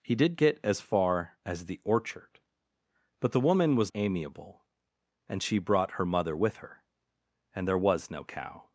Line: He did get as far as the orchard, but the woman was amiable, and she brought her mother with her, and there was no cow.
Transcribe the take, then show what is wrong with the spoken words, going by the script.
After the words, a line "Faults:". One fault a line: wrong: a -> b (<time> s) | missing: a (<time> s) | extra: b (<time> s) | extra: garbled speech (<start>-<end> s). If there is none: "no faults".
He did get as far as the orchard, but the woman was amiable, and she brought her mother with her, and there was no cow.
Faults:
no faults